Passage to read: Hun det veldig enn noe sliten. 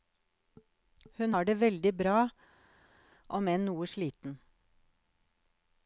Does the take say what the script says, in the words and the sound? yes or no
no